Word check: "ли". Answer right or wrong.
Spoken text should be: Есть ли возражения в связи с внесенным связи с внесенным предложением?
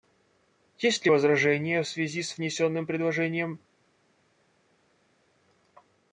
right